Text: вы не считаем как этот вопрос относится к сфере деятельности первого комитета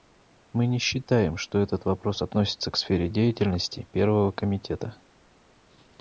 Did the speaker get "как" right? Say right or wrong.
wrong